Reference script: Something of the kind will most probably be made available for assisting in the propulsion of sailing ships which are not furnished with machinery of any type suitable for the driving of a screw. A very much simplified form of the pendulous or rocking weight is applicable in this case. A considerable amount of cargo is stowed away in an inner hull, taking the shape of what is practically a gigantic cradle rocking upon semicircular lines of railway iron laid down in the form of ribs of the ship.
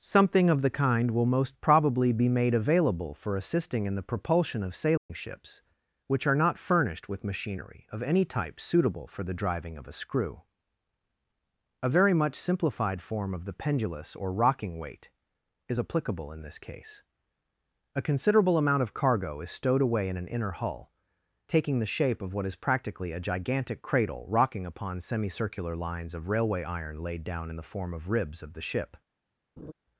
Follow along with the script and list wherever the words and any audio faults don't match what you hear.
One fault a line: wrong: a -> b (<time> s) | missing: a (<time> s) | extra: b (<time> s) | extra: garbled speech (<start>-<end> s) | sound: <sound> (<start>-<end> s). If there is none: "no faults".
sound: dropout (5.0-5.1 s)
sound: laugh (29.6-29.7 s)